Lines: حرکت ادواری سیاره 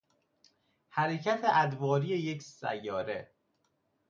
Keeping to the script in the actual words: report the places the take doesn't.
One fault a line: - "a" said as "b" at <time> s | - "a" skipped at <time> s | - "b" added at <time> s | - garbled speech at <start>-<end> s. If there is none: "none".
- "یک" added at 2.1 s